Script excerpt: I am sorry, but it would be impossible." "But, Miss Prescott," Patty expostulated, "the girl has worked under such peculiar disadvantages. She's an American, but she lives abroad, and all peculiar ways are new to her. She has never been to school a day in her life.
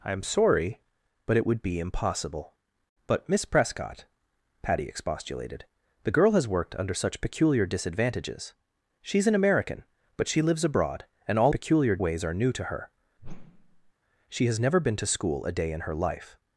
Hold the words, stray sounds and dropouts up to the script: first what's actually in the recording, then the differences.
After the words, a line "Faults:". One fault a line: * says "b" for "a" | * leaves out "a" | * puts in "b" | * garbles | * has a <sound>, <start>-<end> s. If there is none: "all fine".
I am sorry, but it would be impossible." "But, Miss Prescott," Patty expostulated, "the girl has worked under such peculiar disadvantages. She's an American, but she lives abroad, and all peculiar ways are new to her. She has never been to school a day in her life.
Faults:
* has a whoosh, 13.2-13.9 s